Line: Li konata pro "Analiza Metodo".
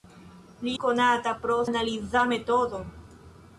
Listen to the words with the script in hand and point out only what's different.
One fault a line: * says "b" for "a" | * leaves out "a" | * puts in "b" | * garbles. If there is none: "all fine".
all fine